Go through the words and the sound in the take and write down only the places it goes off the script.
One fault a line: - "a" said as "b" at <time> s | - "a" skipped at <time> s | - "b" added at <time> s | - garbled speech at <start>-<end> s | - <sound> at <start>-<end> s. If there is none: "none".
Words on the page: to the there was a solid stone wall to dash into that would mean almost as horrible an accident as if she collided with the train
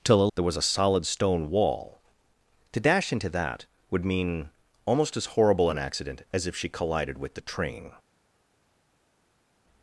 none